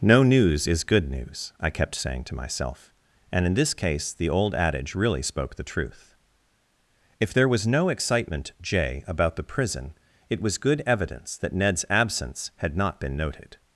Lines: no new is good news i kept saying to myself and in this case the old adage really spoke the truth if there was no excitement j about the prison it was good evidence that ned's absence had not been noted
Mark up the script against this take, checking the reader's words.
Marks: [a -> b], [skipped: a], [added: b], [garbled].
no [new -> news] is good news i kept saying to myself and in this case the old adage really spoke the truth if there was no excitement j about the prison it was good evidence that ned's absence had not been noted